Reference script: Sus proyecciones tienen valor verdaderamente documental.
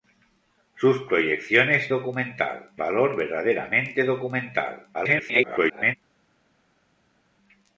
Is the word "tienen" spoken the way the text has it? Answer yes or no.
no